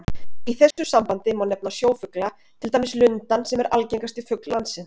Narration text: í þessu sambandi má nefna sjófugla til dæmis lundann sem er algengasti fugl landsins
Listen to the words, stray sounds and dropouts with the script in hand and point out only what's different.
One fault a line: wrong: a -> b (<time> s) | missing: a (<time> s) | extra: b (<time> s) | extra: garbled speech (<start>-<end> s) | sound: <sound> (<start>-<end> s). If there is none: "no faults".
sound: dropout (0.7-0.8 s)